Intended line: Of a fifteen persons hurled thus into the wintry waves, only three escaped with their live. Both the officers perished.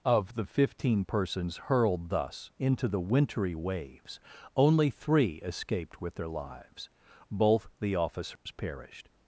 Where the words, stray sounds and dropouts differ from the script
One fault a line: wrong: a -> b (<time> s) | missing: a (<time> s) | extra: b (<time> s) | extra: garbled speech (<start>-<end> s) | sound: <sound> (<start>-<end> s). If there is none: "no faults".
wrong: a -> the (0.3 s)
wrong: live -> lives (6.3 s)
sound: dropout (8.4-8.5 s)